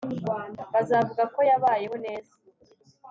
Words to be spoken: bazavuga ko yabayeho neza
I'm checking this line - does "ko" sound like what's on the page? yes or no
yes